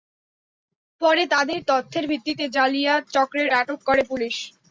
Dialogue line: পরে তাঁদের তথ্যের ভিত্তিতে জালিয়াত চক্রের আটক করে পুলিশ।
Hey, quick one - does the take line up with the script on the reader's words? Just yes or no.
yes